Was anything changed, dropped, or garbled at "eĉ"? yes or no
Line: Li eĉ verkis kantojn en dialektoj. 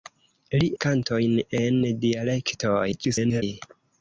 yes